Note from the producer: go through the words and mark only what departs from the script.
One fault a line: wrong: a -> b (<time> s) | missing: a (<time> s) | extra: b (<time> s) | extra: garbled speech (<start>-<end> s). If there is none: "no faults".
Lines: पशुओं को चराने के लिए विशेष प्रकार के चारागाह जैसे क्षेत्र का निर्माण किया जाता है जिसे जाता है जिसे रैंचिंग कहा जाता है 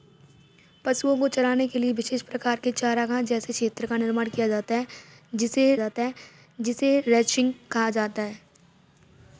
no faults